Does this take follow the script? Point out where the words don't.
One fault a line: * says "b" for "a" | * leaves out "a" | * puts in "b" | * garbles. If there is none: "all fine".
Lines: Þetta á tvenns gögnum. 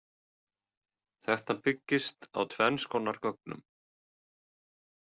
* puts in "byggist"
* puts in "konar"